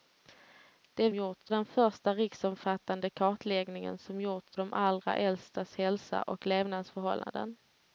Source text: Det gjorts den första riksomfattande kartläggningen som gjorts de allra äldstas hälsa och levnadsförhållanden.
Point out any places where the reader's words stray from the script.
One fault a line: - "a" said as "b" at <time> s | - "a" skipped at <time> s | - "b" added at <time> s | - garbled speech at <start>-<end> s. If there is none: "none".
none